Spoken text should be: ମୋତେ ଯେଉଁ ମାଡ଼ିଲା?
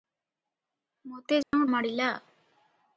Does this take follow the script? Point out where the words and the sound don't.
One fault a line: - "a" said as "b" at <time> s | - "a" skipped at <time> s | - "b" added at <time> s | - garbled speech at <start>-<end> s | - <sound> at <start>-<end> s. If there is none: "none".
- dropout at 1.4-1.5 s